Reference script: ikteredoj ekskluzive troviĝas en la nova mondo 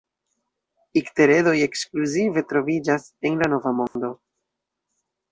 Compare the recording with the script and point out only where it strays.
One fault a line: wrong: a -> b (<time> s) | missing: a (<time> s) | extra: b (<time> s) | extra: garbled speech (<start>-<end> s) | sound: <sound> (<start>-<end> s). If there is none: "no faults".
sound: dropout (3.9-4.0 s)